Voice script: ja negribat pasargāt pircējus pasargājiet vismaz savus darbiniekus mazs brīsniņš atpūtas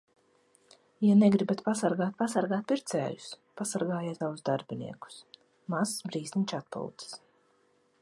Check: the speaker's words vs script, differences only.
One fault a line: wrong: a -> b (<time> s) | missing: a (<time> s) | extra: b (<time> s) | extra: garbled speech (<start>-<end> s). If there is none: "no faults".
extra: pasargāt (2.2 s)
missing: vismaz (4.2 s)